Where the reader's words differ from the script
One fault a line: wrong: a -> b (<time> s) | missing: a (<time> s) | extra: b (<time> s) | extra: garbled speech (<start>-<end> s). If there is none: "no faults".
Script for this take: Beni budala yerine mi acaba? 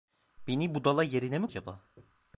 no faults